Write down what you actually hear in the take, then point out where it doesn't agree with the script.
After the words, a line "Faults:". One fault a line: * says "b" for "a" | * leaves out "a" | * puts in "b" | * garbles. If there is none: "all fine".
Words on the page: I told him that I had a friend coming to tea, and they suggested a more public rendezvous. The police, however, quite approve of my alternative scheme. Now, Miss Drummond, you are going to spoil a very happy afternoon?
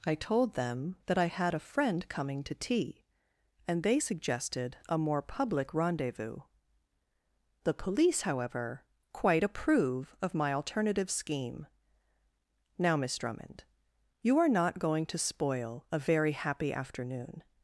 I told them that I had a friend coming to tea, and they suggested a more public rendezvous. The police, however, quite approve of my alternative scheme. Now, Miss Drummond, you are not going to spoil a very happy afternoon?
Faults:
* says "them" for "him"
* puts in "not"